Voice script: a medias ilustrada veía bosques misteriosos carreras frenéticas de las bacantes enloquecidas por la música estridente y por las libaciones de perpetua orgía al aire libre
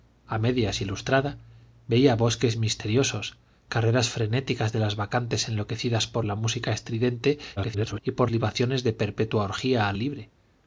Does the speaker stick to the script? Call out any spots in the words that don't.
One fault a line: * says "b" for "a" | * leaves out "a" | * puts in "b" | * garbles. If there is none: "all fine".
* garbles
* leaves out "las"
* leaves out "aire"